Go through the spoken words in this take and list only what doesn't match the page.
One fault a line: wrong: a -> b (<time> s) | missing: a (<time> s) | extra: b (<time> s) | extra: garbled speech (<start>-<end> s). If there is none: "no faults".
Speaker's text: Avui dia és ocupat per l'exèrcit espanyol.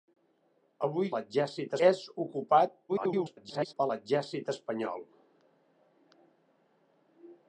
wrong: dia -> l'exèrcit (1.1 s)
extra: garbled speech (2.9-3.7 s)